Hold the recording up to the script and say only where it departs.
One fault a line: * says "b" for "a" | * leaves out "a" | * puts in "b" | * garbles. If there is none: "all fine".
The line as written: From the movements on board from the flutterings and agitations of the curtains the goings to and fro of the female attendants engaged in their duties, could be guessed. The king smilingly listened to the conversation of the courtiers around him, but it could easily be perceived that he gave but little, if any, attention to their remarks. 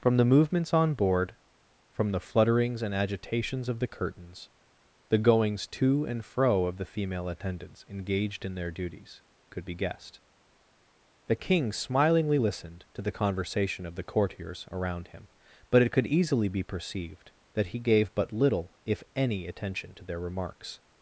all fine